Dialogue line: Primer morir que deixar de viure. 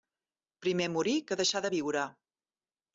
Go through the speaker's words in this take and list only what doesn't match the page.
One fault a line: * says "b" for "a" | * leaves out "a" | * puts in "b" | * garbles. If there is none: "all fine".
all fine